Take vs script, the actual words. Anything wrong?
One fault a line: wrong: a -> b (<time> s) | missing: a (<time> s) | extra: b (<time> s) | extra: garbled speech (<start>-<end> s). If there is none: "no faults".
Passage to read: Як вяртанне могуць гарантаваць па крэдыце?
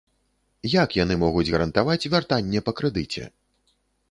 wrong: вяртанне -> яны (1.0 s)
extra: вяртанне (2.1 s)